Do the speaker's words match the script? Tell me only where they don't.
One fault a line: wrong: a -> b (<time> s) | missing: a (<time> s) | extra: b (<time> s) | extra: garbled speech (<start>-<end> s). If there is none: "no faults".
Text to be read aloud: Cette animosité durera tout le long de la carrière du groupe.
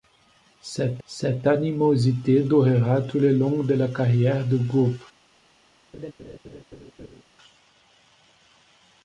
extra: cette (1.1 s)